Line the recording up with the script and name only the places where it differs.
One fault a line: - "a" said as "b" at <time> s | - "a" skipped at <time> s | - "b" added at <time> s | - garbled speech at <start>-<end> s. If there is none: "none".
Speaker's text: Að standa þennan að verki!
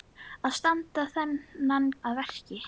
none